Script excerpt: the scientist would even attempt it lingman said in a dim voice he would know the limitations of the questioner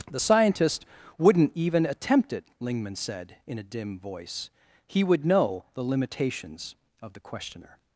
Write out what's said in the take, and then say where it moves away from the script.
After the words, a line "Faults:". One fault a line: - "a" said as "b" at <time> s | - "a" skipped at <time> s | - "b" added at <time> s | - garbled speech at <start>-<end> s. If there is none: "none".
the scientist wouldn't even attempt it lingman said in a dim voice he would know the limitations of the questioner
Faults:
- "would" said as "wouldn't" at 1.2 s